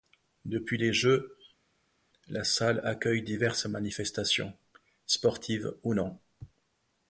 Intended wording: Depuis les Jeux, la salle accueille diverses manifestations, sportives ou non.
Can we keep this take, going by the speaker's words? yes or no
yes